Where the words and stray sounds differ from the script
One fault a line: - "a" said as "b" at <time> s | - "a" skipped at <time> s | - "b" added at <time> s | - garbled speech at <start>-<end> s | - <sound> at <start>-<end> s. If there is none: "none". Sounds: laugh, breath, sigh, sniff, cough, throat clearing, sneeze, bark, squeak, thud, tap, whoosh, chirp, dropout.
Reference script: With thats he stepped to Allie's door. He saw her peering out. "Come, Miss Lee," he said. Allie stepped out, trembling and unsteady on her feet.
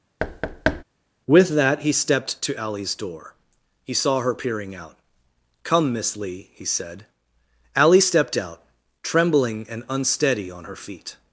- thud at 0.2-0.8 s
- "thats" said as "that" at 1.6 s